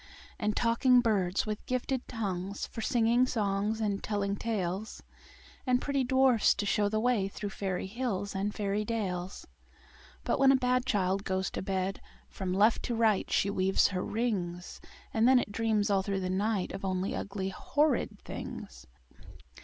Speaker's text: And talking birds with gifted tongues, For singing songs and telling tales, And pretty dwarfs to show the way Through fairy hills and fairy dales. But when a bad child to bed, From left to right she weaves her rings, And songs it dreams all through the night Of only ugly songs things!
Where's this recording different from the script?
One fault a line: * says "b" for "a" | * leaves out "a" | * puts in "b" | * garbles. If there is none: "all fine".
* puts in "goes"
* says "then" for "songs"
* says "horrid" for "songs"